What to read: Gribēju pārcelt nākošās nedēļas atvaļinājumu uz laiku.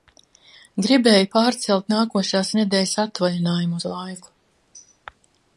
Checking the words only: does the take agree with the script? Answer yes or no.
yes